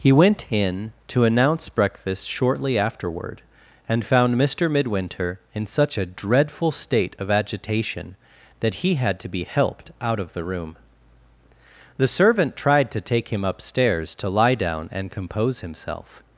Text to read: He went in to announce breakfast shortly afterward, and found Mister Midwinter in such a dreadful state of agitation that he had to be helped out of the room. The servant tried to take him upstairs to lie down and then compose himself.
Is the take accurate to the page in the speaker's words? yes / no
no